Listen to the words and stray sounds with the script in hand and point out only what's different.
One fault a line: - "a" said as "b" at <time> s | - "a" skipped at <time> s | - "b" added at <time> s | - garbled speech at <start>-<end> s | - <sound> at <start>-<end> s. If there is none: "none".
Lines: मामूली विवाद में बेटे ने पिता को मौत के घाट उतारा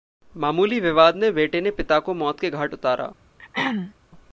- throat clearing at 3.4-3.9 s